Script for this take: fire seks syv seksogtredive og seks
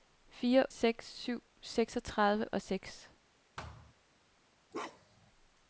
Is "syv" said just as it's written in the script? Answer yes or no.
yes